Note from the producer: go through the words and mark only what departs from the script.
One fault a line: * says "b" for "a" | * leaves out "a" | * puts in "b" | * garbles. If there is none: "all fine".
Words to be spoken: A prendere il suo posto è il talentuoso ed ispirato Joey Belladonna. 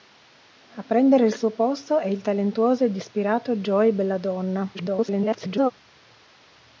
* garbles